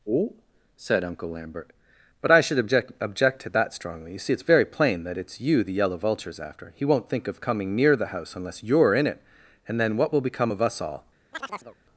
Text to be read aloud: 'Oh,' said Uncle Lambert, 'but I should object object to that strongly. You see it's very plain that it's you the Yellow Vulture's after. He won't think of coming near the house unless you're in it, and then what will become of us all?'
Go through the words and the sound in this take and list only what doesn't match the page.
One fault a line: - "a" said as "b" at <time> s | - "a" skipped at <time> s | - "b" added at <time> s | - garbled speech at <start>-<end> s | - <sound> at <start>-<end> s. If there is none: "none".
- chirp at 11.3-11.8 s